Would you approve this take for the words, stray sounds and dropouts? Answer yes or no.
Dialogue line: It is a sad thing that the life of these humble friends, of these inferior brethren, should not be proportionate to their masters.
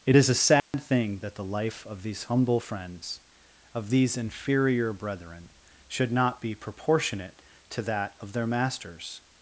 no